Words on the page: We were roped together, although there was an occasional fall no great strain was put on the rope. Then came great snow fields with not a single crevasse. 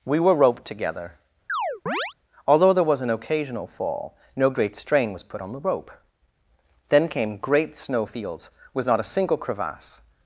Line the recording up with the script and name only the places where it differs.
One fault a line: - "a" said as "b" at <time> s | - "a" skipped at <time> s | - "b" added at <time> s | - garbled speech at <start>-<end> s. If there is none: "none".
none